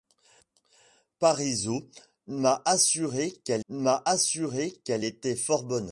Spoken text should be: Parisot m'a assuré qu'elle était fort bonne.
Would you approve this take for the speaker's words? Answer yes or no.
no